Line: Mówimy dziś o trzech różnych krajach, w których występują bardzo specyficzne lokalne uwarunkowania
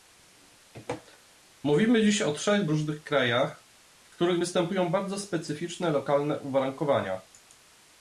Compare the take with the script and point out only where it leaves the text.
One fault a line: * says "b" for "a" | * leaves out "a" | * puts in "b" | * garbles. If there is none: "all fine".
all fine